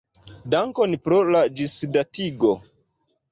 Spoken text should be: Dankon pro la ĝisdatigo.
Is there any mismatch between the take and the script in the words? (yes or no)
no